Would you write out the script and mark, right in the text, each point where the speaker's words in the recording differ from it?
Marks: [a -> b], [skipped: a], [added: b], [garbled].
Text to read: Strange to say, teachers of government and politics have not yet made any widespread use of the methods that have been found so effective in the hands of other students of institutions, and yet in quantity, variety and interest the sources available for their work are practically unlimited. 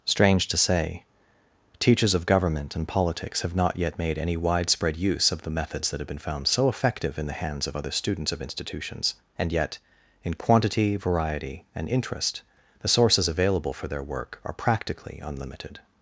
Strange to say, teachers of government and politics have not yet made any widespread use of the methods that have been found so effective in the hands of other students of institutions, and yet in quantity, variety and interest the sources available for their work are practically unlimited.